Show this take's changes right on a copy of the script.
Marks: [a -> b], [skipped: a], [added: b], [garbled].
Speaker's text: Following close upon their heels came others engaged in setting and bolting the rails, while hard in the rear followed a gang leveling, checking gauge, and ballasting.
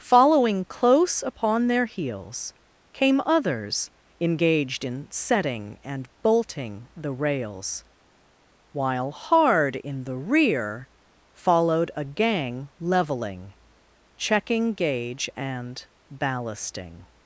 Following close upon their heels came others engaged in setting and bolting the rails, while hard in the rear followed a gang leveling, checking gauge, and ballasting.